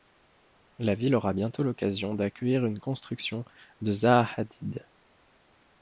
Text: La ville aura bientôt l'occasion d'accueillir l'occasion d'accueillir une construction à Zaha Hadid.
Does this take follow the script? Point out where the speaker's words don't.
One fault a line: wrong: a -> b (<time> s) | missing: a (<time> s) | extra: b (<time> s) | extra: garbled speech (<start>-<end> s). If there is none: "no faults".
missing: l'occasion d'accueillir (2.6 s)
wrong: à -> de (3.8 s)